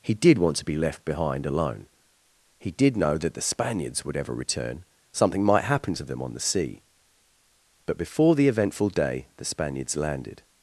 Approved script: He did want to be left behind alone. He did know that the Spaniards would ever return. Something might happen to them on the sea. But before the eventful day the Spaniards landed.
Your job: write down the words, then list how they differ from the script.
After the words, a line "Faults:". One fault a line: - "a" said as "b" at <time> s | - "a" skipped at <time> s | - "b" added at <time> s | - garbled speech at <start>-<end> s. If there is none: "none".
He did want to be left behind alone. He did know that the Spaniards would ever return. Something might happen to them on the sea. But before the eventful day the Spaniards landed.
Faults:
none